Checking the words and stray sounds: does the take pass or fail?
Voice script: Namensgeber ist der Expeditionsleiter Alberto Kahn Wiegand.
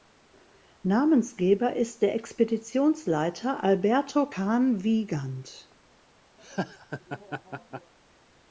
fail